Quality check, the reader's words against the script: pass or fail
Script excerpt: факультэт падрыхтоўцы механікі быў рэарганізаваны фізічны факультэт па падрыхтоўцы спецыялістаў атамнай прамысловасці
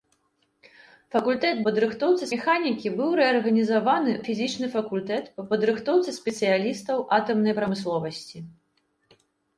pass